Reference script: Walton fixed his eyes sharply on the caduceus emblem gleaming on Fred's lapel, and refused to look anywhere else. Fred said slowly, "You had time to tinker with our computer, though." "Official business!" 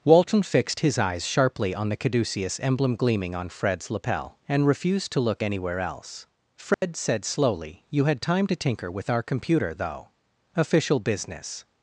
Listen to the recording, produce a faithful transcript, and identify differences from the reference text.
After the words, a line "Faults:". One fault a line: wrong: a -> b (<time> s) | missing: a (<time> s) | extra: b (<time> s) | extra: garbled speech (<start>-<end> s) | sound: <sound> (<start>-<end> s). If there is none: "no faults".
Walton fixed his eyes sharply on the caduceus emblem gleaming on Fred's lapel, and refused to look anywhere else. Fred said slowly, "You had time to tinker with our computer, though." "Official business!"
Faults:
sound: dropout (6.7-6.8 s)